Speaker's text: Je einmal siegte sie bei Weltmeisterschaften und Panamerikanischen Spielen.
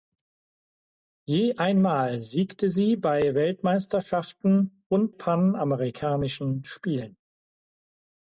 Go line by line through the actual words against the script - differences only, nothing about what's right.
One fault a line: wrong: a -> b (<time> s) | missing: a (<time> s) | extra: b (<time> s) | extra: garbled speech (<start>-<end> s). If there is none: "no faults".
no faults